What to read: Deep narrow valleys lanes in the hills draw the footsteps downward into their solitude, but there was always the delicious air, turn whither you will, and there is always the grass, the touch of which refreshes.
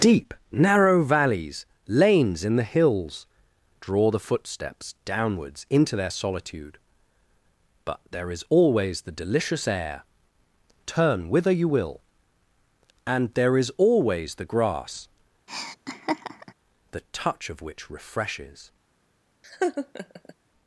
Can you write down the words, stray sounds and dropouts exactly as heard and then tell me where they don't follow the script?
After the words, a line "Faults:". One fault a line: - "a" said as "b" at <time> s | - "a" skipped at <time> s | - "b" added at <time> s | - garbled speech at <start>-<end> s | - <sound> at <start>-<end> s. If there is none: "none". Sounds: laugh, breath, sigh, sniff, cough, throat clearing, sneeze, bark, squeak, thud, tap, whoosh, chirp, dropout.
Deep narrow valleys lanes in the hills draw the footsteps downwards into their solitude, but there is always the delicious air, turn whither you will, and there is always the grass, the touch of which refreshes.
Faults:
- "downward" said as "downwards" at 5.0 s
- "was" said as "is" at 8.3 s
- laugh at 15.5-16.5 s
- laugh at 19.4-20.3 s